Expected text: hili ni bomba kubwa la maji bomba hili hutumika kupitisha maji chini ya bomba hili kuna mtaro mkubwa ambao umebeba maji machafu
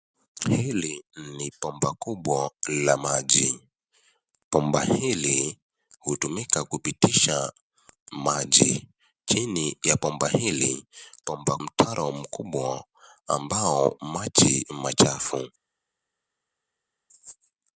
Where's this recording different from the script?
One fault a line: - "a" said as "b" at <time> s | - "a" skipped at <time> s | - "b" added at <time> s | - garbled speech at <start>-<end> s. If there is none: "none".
- "kuna" said as "bomba" at 11.3 s
- "umebeba" skipped at 13.9 s